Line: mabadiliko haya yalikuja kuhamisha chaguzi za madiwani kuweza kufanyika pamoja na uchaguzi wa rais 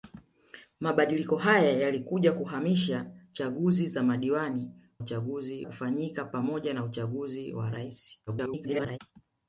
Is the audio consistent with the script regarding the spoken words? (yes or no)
no